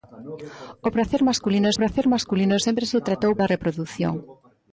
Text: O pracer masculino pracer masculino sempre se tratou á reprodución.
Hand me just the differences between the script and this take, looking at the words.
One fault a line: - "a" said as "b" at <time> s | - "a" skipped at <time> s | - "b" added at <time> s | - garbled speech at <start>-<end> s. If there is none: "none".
none